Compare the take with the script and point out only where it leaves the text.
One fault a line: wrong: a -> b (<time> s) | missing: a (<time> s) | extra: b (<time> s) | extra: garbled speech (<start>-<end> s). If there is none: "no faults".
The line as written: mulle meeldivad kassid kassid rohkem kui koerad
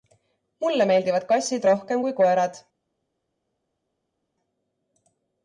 missing: kassid (1.7 s)